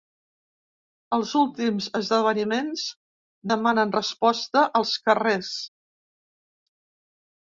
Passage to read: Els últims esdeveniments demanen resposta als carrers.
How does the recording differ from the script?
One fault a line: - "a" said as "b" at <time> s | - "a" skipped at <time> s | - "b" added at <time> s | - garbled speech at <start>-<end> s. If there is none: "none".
none